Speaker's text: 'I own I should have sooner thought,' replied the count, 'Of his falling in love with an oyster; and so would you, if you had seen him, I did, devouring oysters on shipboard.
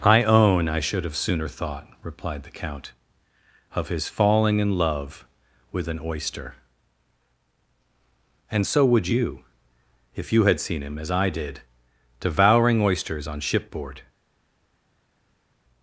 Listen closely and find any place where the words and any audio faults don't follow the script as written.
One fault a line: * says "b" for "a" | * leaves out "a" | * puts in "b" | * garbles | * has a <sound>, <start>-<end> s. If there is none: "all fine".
* puts in "as"